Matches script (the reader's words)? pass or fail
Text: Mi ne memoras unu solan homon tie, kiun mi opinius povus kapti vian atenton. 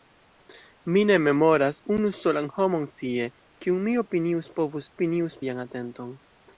fail